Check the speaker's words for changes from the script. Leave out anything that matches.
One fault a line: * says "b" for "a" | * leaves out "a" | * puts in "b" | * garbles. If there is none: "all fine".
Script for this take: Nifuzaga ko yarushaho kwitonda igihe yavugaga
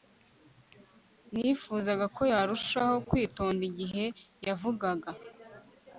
all fine